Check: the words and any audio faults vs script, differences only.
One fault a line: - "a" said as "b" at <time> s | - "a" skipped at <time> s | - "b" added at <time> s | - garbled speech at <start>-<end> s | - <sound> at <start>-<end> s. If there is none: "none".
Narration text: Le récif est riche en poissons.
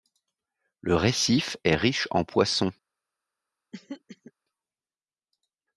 - throat clearing at 3.7-4.3 s